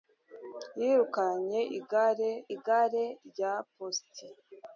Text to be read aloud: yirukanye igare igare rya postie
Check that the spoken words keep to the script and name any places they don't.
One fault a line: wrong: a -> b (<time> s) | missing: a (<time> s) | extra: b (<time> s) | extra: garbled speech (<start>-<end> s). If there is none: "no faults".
no faults